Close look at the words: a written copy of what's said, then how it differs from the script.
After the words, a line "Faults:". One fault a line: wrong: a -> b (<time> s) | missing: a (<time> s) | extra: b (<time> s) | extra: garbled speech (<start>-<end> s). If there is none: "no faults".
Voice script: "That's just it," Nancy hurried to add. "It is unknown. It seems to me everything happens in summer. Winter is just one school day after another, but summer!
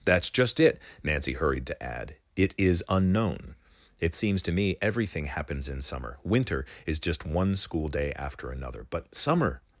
"That's just it," Nancy hurried to add. "It is unknown. It seems to me everything happens in summer. Winter is just one school day after another, but summer!
Faults:
no faults